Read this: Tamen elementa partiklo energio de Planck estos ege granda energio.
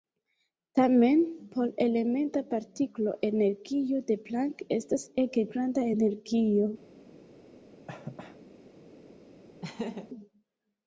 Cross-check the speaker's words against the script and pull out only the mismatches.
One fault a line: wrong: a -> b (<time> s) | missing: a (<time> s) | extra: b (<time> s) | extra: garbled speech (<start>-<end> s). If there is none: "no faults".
extra: por (1.6 s)
wrong: estos -> estas (4.8 s)